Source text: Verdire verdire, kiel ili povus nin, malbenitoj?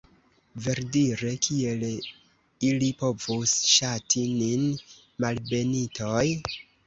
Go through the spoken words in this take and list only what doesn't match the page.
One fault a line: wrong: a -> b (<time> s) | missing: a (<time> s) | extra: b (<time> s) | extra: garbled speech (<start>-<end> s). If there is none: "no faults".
missing: verdire (1.3 s)
extra: ŝati (3.8 s)